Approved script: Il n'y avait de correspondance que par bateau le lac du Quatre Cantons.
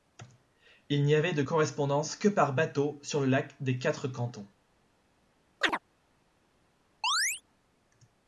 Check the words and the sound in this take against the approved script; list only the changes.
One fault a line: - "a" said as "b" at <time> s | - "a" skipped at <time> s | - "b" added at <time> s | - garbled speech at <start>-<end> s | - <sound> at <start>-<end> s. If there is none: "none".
- "sur" added at 3.0 s
- "du" said as "des" at 3.6 s
- chirp at 5.6-5.8 s
- chirp at 7.0-7.4 s